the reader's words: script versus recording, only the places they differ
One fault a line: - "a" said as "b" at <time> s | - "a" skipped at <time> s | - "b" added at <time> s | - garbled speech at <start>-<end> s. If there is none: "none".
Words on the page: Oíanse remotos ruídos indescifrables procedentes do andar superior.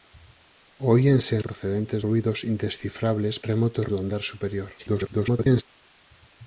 - "remotos" said as "procedentes" at 1.4 s
- "procedentes" said as "remotos" at 3.5 s
- garbled speech at 4.8-5.6 s